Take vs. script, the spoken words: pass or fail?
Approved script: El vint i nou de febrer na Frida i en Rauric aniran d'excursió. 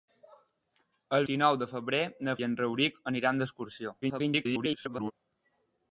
fail